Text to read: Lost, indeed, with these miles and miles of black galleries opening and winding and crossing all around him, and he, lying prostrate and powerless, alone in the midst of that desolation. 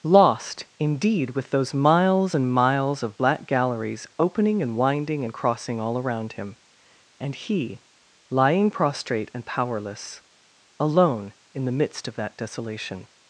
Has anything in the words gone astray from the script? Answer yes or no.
yes